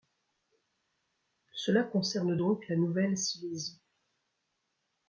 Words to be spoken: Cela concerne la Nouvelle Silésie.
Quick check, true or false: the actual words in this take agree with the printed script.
false